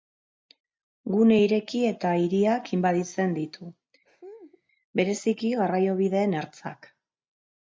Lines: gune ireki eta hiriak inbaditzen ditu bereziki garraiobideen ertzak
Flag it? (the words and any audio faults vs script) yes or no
yes